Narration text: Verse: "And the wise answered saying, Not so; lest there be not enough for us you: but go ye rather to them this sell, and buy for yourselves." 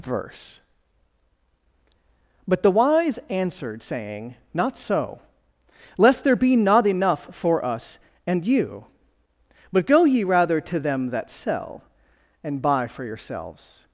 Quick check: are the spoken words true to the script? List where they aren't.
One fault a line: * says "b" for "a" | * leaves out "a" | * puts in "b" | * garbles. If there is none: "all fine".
* says "But" for "And"
* puts in "and"
* says "that" for "this"